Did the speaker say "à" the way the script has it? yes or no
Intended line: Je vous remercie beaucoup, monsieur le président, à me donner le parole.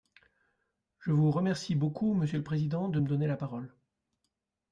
no